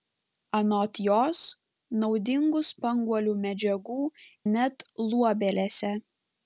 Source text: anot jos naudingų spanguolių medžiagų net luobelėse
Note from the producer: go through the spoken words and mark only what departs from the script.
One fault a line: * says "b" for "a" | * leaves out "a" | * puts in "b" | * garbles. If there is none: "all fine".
all fine